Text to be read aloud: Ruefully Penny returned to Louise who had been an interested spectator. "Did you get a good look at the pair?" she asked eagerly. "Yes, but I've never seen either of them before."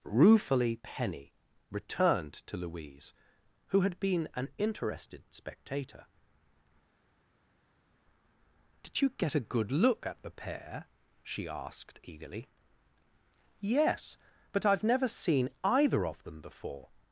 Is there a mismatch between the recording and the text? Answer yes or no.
no